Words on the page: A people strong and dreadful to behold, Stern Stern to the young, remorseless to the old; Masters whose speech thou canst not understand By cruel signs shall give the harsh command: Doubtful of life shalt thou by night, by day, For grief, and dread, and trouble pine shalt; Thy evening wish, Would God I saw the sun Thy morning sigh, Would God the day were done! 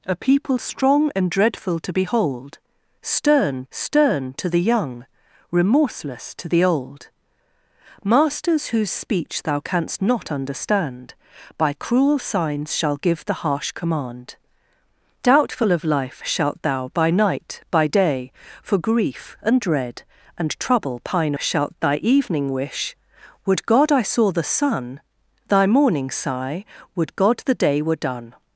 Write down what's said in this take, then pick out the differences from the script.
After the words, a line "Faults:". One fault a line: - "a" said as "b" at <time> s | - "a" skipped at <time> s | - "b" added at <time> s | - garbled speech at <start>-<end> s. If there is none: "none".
A people strong and dreadful to behold, Stern Stern to the young, remorseless to the old; Masters whose speech thou canst not understand By cruel signs shall give the harsh command: Doubtful of life shalt thou by night, by day, For grief, and dread, and trouble pine shalt; Thy evening wish, Would God I saw the sun Thy morning sigh, Would God the day were done!
Faults:
none